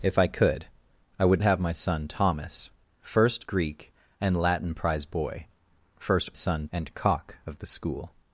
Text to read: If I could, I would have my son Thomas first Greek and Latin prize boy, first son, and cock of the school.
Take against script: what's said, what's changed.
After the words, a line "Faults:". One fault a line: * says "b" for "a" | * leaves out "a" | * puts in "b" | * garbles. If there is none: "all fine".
If I could, I would have my son Thomas first Greek and Latin prize boy, first son, and cock of the school.
Faults:
all fine